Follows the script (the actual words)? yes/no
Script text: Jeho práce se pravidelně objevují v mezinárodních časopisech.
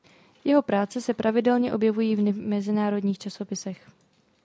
yes